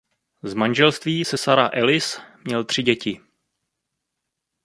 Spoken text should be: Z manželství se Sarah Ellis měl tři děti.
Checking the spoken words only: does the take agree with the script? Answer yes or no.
yes